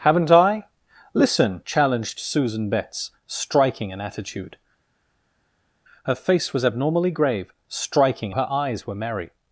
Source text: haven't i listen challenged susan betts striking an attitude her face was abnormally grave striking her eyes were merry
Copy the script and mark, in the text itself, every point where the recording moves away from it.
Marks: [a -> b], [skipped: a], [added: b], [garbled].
haven't i listen challenged susan betts striking an attitude her face was abnormally grave striking her eyes were merry